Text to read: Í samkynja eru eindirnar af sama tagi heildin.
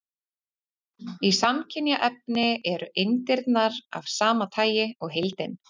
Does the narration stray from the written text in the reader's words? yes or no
yes